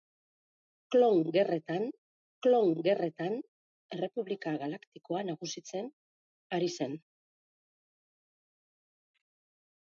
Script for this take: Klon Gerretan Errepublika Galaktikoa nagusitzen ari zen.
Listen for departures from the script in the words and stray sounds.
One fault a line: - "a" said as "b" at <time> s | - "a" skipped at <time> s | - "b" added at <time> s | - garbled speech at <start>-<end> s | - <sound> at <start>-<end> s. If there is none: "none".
- "klon Gerretan" added at 2.5 s